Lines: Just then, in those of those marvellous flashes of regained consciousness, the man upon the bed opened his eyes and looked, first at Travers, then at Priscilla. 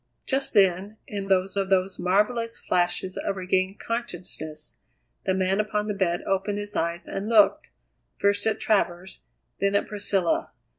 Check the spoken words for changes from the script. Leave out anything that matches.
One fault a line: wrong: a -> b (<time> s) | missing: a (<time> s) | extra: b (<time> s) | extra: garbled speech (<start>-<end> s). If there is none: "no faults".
no faults